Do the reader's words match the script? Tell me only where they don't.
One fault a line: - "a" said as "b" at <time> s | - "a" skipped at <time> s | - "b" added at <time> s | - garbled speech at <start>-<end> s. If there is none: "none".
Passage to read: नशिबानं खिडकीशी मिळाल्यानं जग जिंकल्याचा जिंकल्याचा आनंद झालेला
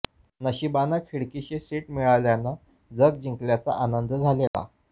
- "सीट" added at 1.6 s
- "जिंकल्याचा" skipped at 3.8 s